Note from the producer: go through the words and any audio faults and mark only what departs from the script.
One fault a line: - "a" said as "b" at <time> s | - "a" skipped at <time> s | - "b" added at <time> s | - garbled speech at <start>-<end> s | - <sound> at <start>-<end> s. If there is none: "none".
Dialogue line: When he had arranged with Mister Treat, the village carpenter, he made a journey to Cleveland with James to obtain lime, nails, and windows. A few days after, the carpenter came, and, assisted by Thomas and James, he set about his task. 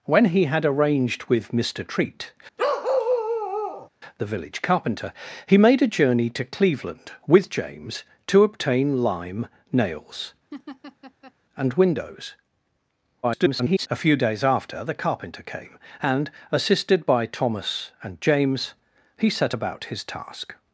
- bark at 2.6-3.9 s
- laugh at 10.5-11.3 s
- garbled speech at 13.2-13.9 s